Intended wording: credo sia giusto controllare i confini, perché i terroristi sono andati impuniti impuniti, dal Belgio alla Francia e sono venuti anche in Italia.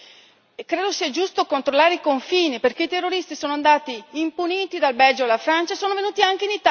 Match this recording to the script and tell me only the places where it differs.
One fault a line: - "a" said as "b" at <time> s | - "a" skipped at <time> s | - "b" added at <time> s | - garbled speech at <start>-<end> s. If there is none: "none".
- "impuniti" skipped at 4.8 s